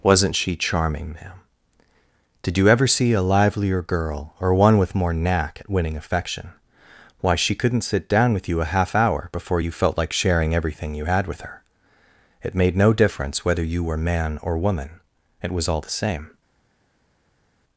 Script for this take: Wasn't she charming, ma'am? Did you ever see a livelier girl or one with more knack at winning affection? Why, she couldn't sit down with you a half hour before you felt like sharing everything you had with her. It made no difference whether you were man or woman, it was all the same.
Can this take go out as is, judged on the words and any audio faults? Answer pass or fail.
pass